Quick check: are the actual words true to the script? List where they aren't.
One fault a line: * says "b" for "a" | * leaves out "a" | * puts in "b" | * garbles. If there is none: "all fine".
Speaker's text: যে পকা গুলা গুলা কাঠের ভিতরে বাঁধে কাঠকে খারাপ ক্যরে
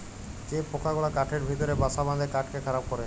* leaves out "গুলা"
* puts in "বাসা"